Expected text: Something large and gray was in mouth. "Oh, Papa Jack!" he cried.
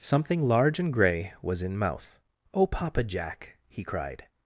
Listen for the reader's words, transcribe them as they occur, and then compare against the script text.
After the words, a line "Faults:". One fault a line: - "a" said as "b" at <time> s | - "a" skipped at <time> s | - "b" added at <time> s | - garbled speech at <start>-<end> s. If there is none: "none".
Something large and gray was in mouth. "Oh, Papa Jack!" he cried.
Faults:
none